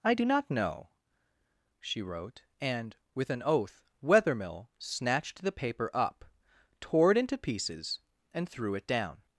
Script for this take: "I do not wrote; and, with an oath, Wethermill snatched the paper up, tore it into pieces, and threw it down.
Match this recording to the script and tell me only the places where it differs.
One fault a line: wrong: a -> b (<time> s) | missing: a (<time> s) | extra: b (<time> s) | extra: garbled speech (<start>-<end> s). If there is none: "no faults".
extra: know she (0.5 s)